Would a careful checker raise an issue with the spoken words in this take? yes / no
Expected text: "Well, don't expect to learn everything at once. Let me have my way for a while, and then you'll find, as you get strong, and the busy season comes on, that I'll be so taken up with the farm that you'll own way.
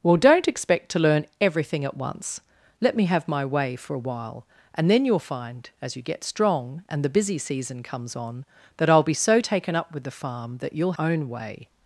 no